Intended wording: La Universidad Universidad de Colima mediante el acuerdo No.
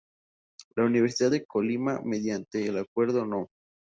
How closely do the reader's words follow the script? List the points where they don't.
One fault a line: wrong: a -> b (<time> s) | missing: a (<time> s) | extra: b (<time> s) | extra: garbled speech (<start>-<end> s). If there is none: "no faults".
missing: Universidad (1.3 s)